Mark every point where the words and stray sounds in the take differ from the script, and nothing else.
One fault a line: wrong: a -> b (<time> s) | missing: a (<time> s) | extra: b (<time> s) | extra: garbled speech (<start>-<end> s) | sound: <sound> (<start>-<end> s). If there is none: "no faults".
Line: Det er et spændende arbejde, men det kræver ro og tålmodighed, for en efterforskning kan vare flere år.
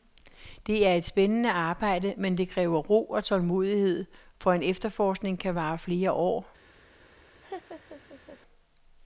sound: laugh (7.4-8.4 s)